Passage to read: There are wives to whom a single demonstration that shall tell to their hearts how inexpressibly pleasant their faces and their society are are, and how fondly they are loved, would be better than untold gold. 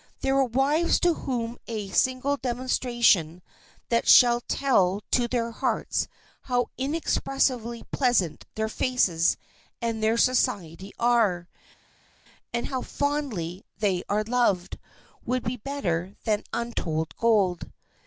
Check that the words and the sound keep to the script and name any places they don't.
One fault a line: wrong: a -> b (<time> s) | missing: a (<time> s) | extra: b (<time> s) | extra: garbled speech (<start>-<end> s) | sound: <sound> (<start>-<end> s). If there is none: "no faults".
missing: are (11.5 s)